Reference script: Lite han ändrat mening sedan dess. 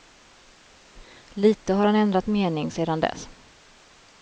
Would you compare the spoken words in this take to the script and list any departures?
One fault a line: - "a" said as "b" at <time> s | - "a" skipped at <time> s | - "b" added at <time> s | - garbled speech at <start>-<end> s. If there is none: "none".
- "har" added at 1.7 s